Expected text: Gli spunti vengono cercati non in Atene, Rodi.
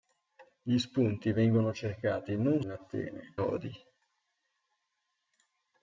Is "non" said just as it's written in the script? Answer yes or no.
yes